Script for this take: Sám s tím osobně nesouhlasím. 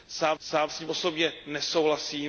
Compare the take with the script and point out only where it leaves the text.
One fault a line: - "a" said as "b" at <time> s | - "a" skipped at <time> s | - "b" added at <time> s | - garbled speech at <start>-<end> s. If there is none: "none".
- "sám" added at 0.4 s